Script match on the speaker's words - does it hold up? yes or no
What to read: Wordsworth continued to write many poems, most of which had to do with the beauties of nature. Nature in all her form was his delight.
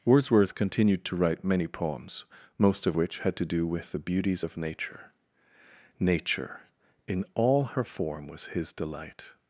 yes